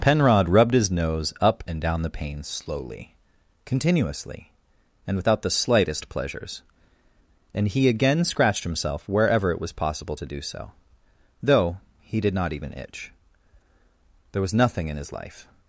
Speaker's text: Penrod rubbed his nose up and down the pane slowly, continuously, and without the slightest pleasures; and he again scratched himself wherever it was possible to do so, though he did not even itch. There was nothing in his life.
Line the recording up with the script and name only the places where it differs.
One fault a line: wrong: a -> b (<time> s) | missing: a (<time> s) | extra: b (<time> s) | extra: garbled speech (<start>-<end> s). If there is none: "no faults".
no faults